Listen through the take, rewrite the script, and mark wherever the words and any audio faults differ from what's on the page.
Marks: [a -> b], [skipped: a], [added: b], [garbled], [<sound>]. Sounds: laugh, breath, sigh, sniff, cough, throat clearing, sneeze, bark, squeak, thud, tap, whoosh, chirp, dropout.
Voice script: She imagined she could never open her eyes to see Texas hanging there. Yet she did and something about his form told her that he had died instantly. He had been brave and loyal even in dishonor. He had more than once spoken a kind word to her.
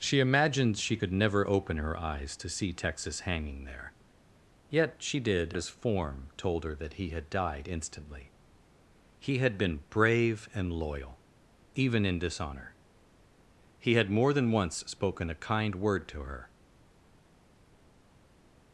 She imagined she could never open her eyes to see Texas hanging there. Yet she did [skipped: and something about] his form told her that he had died instantly. He had been brave and loyal even in dishonor. He had more than once spoken a kind word to her.